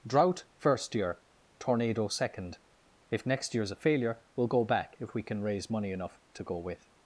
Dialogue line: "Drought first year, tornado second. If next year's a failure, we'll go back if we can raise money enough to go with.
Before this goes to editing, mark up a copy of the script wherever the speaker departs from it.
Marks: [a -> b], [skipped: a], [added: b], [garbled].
"Drought first year, tornado second. If next year's a failure, we'll go back if we can raise money enough to go with.